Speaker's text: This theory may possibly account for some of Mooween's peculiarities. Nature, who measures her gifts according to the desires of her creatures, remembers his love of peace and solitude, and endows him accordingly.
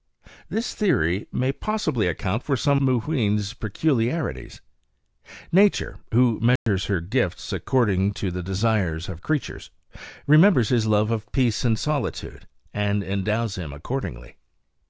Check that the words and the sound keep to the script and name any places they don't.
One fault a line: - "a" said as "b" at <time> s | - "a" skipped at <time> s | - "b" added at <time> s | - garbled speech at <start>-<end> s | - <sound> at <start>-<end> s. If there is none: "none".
- "of" skipped at 2.8 s
- dropout at 6.6-6.7 s
- "her" skipped at 9.2 s